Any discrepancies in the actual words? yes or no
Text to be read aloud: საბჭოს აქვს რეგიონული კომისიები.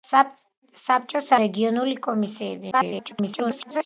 yes